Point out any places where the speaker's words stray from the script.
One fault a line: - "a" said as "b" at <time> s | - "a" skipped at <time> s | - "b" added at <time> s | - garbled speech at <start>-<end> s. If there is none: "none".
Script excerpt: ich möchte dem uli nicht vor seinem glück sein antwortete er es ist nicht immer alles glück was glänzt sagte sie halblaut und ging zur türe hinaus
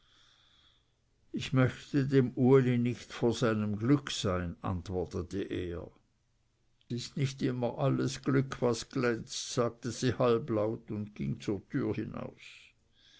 - "es" skipped at 5.9 s